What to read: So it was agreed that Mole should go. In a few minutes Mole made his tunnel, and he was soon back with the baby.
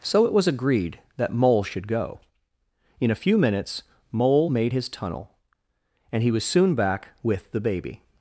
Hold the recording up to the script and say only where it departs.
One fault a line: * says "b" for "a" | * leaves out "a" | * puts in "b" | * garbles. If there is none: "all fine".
all fine